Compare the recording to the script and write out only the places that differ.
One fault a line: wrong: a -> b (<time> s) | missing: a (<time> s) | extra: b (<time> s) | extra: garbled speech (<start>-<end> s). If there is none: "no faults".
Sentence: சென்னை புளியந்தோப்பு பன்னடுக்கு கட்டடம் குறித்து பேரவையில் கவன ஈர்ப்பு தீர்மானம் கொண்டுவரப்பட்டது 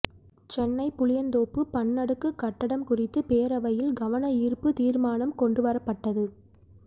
no faults